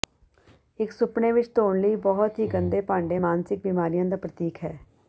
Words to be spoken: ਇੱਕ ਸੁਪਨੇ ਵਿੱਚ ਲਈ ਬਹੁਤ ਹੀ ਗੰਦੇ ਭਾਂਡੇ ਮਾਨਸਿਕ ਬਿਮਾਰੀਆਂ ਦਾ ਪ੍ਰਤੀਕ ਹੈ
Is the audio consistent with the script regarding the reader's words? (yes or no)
no